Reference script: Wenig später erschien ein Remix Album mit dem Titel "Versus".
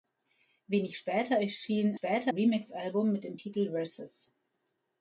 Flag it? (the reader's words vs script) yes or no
yes